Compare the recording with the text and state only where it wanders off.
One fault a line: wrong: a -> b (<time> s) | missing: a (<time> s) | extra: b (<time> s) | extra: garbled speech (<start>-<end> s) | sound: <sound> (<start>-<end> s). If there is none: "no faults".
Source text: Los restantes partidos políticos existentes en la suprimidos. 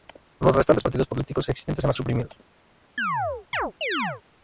sound: chirp (3.0-4.2 s)